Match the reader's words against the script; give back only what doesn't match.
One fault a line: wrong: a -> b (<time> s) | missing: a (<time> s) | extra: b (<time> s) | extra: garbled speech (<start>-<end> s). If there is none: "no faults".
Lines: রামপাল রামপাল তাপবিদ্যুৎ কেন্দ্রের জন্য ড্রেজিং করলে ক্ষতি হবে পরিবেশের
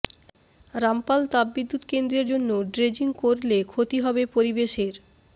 missing: রামপাল (1.2 s)